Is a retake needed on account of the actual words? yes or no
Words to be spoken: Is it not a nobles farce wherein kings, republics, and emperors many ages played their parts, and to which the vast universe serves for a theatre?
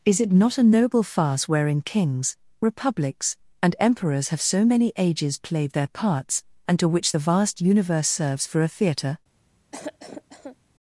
yes